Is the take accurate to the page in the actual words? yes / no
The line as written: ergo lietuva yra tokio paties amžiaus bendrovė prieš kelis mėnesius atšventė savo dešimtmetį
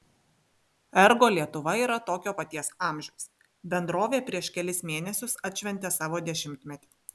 yes